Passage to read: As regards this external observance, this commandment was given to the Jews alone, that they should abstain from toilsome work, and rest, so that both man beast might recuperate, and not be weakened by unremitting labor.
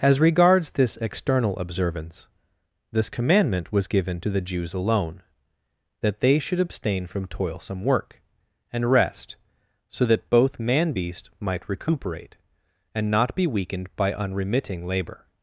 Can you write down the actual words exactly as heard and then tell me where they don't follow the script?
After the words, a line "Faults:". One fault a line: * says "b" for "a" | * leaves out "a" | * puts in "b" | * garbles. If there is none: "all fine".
As regards this external observance, this commandment was given to the Jews alone, that they should abstain from toilsome work, and rest, so that both man beast might recuperate, and not be weakened by unremitting labor.
Faults:
all fine